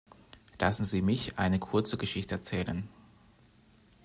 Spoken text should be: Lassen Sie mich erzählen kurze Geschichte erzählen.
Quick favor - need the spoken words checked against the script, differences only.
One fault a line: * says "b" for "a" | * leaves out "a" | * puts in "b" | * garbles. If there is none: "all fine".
* says "eine" for "erzählen"